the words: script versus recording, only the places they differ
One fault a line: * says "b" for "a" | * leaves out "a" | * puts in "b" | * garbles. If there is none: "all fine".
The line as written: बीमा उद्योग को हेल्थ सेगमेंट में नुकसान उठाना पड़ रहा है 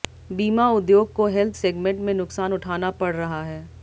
all fine